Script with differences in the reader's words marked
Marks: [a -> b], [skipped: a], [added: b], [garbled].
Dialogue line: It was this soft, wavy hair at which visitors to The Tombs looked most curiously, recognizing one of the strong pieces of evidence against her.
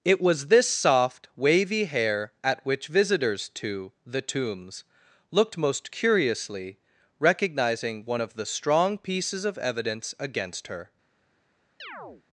It was this soft, wavy hair at which visitors to The Tombs looked most curiously, recognizing one of the strong pieces of evidence against her.